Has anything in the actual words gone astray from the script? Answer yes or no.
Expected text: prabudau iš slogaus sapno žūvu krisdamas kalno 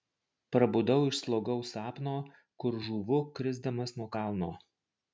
yes